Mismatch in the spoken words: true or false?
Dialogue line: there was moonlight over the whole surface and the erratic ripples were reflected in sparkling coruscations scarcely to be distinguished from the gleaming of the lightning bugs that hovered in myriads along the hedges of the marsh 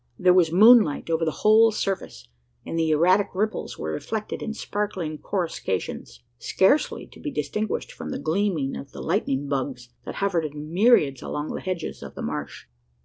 false